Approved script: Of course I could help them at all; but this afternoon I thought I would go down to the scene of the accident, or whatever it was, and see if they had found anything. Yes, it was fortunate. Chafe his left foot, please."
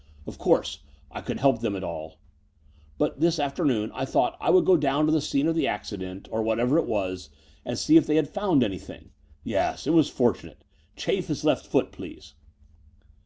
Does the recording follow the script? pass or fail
pass